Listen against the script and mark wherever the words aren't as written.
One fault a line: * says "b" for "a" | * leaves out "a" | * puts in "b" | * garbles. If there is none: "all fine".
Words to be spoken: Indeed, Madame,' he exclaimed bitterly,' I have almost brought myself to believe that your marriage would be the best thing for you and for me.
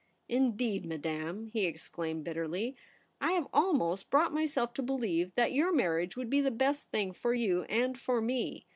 all fine